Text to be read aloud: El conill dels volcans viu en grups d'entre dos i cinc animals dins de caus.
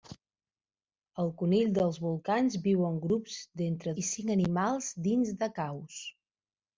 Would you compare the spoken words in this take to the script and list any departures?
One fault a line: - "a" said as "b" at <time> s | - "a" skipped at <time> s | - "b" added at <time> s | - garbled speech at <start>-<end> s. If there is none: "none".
- "dos" skipped at 4.0 s